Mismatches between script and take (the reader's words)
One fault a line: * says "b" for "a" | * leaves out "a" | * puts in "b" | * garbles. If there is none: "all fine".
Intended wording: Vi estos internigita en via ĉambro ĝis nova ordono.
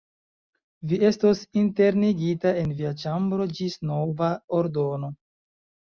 all fine